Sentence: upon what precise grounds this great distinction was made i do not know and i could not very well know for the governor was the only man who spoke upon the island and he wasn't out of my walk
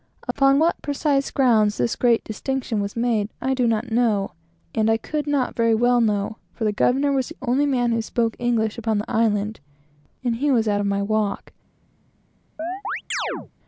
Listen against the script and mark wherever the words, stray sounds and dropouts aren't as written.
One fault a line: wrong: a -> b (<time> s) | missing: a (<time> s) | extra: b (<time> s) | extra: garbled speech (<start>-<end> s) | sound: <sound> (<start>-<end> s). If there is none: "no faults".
sound: dropout (0.3-0.4 s)
extra: english (8.4 s)
wrong: wasn't -> was (10.5 s)
sound: chirp (12.6-13.5 s)